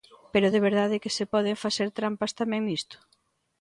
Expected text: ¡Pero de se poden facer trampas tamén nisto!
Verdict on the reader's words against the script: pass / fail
fail